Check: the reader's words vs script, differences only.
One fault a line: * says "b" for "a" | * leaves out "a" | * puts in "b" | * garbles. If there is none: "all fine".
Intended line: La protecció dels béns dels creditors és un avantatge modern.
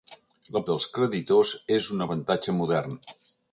* leaves out "protecció dels béns"